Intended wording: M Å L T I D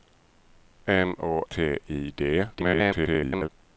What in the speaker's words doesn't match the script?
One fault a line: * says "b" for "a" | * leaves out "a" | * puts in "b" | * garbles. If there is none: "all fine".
* leaves out "L"
* garbles